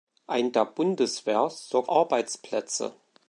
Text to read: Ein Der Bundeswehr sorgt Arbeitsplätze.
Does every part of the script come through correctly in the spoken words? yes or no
yes